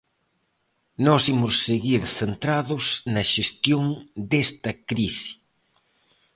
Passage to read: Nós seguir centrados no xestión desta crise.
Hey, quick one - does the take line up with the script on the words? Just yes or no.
no